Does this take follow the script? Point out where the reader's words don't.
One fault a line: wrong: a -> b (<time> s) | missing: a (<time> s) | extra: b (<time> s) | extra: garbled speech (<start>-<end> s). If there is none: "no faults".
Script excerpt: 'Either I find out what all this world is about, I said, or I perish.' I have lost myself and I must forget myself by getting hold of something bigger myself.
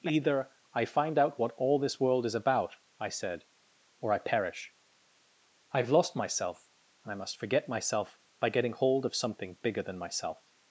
extra: than (9.8 s)